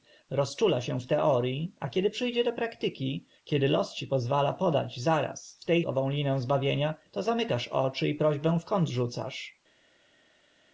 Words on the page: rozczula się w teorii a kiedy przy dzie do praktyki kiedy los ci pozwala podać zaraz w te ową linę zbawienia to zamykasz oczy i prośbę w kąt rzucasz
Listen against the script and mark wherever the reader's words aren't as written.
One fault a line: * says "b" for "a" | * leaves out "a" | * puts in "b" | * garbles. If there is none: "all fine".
all fine